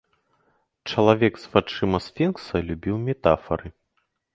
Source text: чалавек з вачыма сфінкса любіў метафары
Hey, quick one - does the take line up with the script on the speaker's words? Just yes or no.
yes